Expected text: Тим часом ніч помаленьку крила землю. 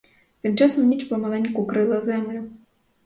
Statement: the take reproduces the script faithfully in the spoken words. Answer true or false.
true